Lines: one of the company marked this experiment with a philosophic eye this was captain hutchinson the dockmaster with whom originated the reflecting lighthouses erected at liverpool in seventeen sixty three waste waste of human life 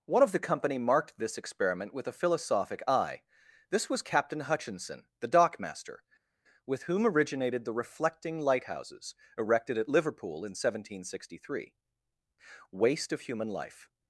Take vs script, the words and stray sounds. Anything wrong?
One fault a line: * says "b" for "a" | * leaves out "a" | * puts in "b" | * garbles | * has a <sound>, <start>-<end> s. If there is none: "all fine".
* leaves out "waste"